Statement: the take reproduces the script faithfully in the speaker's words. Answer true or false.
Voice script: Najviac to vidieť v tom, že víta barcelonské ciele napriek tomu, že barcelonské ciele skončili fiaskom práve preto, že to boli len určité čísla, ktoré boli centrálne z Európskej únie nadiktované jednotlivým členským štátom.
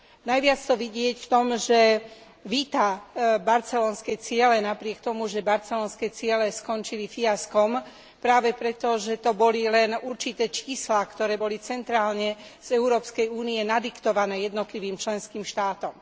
true